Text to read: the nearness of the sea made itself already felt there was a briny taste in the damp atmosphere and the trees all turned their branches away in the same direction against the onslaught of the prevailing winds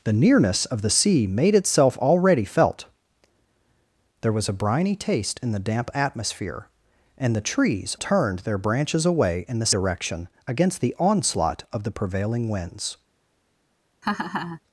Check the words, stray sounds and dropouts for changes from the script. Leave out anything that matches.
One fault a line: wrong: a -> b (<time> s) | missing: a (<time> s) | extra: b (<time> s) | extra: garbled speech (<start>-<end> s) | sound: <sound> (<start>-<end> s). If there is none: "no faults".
missing: all (8.0 s)
missing: same (9.7 s)
sound: laugh (14.0-14.6 s)